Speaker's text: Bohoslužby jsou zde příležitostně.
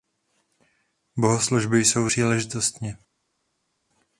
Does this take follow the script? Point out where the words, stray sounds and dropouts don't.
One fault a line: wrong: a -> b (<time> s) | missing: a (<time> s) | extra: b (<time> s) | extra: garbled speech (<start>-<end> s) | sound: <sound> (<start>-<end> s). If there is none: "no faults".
missing: zde (2.1 s)